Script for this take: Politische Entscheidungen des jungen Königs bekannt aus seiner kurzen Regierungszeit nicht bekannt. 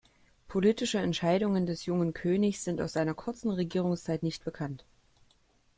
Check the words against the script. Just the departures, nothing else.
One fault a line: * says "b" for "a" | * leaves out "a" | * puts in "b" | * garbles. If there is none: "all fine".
* says "sind" for "bekannt"